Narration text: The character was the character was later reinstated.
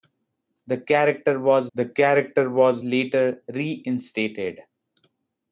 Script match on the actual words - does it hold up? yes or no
yes